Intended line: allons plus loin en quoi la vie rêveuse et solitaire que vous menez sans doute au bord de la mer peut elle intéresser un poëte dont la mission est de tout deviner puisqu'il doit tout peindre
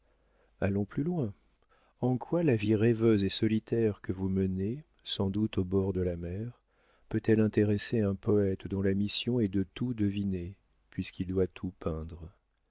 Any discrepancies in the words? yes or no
no